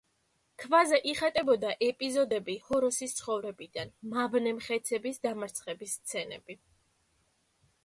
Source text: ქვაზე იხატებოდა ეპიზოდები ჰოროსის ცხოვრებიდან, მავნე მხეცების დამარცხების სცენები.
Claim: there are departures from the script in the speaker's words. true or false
false